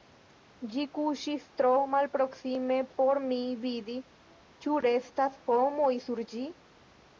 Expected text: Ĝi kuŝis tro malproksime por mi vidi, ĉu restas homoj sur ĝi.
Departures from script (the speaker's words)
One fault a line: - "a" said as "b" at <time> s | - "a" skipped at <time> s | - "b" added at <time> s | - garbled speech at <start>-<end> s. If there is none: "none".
none